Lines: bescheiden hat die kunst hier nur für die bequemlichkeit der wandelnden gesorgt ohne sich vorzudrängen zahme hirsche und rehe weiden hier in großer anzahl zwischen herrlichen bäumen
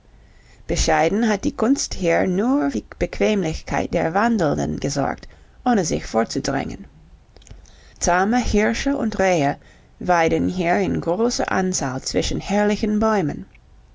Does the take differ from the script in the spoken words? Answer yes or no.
yes